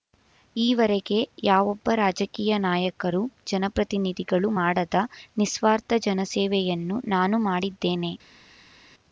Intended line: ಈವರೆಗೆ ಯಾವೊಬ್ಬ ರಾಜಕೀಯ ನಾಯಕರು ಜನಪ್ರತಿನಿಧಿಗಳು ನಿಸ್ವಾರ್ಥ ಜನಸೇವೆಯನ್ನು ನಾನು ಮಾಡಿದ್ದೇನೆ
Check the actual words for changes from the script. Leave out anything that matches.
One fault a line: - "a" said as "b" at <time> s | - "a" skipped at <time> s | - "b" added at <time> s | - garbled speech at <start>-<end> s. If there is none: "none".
- "ಮಾಡದ" added at 4.6 s